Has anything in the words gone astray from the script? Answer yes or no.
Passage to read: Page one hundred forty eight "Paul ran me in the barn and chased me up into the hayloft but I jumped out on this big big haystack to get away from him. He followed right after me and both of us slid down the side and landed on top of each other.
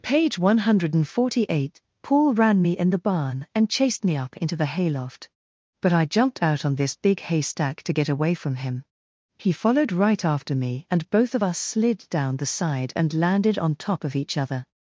yes